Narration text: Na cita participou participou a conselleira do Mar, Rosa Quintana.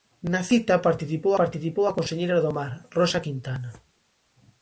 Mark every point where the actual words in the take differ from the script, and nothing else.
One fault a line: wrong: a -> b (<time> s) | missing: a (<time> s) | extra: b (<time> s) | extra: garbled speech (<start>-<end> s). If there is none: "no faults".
no faults